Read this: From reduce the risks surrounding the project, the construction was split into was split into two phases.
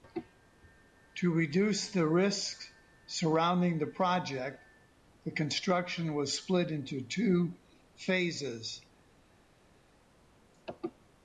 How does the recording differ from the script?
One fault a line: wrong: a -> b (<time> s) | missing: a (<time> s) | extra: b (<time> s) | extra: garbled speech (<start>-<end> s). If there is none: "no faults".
wrong: From -> To (1.2 s)
missing: was split into (7.0 s)